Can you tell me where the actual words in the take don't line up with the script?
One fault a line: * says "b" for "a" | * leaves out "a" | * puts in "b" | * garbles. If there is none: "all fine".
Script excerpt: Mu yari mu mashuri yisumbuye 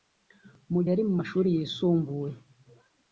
all fine